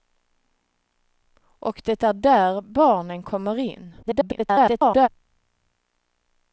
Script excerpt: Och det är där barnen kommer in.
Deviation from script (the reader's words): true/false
true